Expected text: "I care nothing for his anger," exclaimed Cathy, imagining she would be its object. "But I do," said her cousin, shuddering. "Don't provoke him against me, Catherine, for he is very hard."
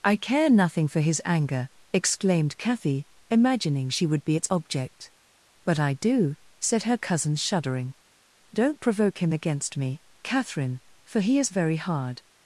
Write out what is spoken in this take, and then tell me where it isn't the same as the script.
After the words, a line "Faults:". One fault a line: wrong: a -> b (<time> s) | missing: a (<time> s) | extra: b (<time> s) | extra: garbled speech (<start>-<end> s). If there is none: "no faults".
"I care nothing for his anger," exclaimed Cathy, imagining she would be its object. "But I do," said her cousin, shuddering. "Don't provoke him against me, Catherine, for he is very hard."
Faults:
no faults